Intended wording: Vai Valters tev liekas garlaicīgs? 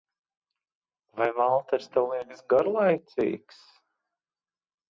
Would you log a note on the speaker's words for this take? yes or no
no